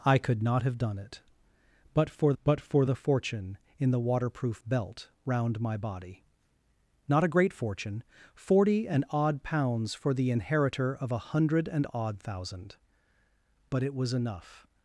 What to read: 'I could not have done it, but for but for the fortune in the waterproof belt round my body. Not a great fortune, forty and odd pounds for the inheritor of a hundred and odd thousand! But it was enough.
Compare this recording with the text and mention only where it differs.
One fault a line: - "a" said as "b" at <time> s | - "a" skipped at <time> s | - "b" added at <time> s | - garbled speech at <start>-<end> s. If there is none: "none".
none